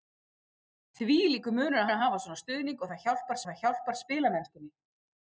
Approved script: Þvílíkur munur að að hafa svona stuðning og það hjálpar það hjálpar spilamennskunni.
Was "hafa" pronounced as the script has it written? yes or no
yes